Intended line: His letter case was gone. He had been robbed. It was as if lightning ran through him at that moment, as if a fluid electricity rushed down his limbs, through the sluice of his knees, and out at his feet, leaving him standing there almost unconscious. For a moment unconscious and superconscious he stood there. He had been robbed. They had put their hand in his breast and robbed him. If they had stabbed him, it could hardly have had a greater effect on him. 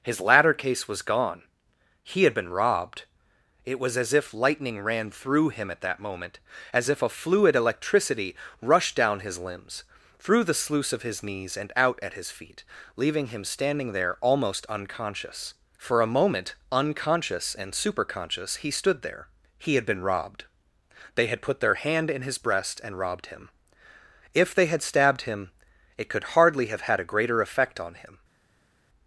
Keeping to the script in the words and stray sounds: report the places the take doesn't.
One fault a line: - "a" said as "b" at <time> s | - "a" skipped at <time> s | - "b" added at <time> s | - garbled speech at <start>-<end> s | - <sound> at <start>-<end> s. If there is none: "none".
- "letter" said as "ladder" at 0.2 s